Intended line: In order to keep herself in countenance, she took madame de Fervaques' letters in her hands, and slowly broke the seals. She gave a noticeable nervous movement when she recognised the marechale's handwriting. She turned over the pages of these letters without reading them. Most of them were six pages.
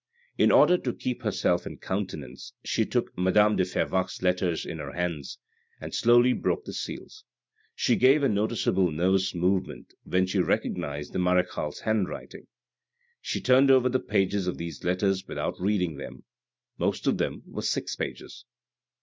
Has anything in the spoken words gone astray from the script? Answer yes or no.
no